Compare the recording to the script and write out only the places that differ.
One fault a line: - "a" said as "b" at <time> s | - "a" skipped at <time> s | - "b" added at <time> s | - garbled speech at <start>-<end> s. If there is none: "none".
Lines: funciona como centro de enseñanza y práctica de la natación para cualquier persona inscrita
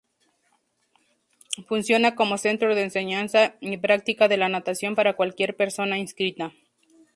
none